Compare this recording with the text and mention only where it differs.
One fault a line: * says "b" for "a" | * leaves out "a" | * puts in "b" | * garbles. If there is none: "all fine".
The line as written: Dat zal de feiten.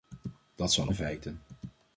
all fine